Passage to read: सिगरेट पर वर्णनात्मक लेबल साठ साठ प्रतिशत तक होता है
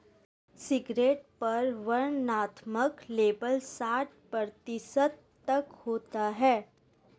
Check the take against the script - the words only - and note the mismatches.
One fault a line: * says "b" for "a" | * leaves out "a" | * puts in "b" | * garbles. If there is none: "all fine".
* leaves out "साठ"